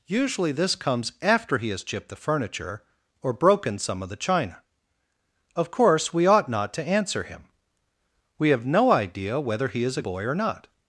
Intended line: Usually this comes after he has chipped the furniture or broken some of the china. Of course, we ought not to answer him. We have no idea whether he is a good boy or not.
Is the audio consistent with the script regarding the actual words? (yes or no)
no